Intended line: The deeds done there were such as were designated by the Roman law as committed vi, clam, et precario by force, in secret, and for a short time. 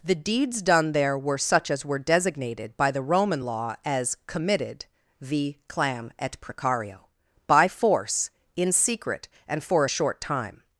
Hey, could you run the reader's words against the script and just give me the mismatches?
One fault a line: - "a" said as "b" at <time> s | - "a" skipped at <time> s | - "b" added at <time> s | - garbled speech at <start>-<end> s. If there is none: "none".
none